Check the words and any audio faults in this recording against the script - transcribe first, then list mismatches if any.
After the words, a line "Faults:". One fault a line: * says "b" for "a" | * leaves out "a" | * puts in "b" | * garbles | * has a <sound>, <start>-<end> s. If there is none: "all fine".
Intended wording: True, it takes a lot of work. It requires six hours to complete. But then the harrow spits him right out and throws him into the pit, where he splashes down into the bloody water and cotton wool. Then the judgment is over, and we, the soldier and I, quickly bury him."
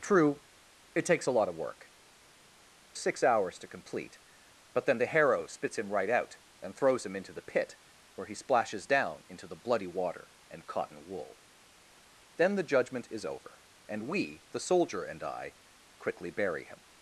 True, it takes a lot of work. Six hours to complete. But then the harrow spits him right out and throws him into the pit, where he splashes down into the bloody water and cotton wool. Then the judgment is over, and we, the soldier and I, quickly bury him."
Faults:
* leaves out "It requires"